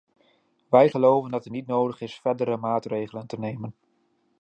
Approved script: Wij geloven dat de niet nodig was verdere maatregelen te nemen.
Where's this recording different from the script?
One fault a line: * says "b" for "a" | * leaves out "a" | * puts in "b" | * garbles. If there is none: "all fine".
* says "het" for "de"
* says "is" for "was"